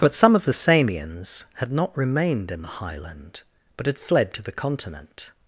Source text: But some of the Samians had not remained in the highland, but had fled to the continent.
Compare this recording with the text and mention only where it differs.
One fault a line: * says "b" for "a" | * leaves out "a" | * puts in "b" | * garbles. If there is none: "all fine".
all fine